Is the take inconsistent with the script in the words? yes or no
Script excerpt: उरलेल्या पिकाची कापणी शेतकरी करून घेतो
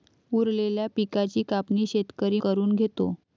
no